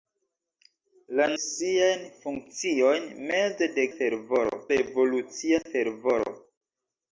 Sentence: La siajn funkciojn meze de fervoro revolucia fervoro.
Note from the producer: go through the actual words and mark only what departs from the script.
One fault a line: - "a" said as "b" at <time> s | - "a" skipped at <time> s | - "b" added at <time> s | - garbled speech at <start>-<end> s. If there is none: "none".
none